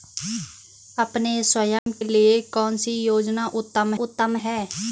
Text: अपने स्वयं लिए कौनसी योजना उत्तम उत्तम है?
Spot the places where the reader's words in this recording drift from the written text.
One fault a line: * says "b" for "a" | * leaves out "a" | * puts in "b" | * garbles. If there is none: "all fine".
all fine